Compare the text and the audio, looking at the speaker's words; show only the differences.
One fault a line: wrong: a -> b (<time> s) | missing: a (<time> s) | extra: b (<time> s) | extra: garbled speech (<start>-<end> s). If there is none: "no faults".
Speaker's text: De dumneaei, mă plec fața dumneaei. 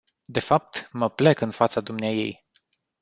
wrong: dumneaei -> fapt (0.4 s)
extra: în (1.4 s)